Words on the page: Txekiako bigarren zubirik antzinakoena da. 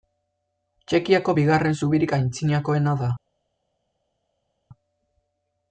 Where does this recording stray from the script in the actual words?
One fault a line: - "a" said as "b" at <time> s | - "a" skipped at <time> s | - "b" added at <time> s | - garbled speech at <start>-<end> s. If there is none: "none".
none